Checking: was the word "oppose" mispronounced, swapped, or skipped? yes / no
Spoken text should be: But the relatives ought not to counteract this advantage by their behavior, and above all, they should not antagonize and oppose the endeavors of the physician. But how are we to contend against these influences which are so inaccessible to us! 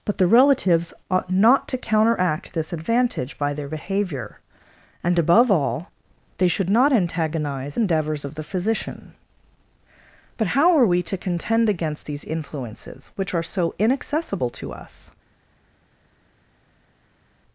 yes